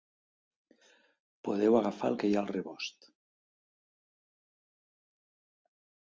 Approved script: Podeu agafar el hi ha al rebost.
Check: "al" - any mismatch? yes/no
no